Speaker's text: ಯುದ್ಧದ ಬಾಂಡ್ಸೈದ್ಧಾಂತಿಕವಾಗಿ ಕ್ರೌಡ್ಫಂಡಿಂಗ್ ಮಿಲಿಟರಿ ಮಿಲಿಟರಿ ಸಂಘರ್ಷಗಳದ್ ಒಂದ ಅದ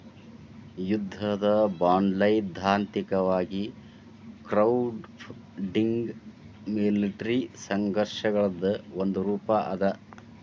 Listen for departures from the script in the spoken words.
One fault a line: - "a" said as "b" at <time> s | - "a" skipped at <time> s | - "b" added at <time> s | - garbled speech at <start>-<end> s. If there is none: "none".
- "ಮಿಲಿಟರಿ" skipped at 7.4 s
- "ರೂಪಾ" added at 9.3 s